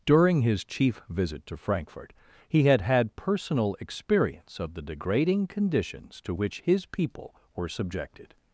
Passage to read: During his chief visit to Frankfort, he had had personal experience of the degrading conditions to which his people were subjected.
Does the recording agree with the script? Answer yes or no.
yes